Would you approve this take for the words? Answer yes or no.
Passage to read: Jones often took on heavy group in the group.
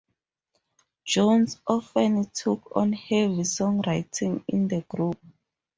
no